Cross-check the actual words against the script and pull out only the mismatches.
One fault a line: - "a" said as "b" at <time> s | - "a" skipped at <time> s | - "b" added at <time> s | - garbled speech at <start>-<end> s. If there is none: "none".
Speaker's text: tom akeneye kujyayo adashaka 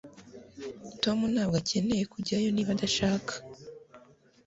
- "ntabwo" added at 1.3 s
- "niba" added at 2.5 s